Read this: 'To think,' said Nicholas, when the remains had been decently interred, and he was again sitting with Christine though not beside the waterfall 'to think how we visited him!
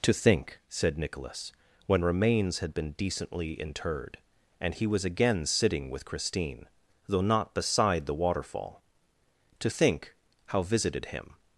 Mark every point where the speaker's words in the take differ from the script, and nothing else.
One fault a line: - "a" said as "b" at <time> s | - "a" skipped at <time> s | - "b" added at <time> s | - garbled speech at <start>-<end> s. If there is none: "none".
- "the" skipped at 2.0 s
- "we" skipped at 10.6 s